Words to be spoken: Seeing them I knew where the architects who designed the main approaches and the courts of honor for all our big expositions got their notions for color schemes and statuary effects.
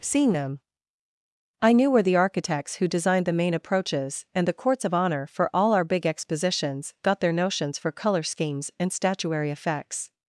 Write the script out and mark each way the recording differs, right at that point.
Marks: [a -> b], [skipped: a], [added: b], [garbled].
Seeing them I knew where the architects who designed the main approaches and the courts of honor for all our big expositions got their notions for color schemes and statuary effects.